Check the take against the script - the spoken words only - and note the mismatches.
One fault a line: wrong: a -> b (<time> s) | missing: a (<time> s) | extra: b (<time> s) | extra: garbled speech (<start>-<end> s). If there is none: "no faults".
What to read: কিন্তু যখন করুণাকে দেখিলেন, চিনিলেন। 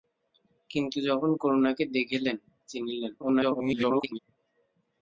extra: garbled speech (3.2-4.2 s)